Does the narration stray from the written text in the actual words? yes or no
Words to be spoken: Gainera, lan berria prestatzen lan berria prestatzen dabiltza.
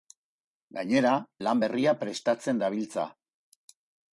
yes